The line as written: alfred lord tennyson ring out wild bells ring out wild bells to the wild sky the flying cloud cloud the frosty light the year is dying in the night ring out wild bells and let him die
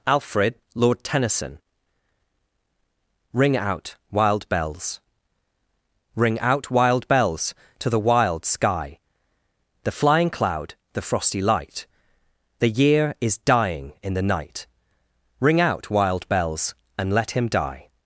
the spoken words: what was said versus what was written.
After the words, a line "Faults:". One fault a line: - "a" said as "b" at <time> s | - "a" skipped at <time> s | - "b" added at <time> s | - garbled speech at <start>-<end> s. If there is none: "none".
alfred lord tennyson ring out wild bells ring out wild bells to the wild sky the flying cloud the frosty light the year is dying in the night ring out wild bells and let him die
Faults:
- "cloud" skipped at 10.7 s